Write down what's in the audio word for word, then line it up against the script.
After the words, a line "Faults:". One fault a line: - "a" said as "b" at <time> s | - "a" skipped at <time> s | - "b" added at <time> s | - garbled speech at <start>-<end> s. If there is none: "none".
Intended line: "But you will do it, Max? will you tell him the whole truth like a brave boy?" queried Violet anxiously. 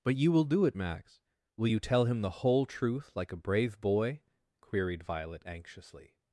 "But you will do it, Max? will you tell him the whole truth like a brave boy?" queried Violet anxiously.
Faults:
none